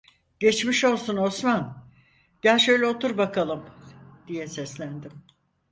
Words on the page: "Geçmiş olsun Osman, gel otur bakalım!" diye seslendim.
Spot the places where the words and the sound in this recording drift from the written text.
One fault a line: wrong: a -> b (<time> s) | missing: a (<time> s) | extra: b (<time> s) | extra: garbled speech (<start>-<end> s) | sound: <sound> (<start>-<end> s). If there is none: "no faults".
extra: şöyle (2.6 s)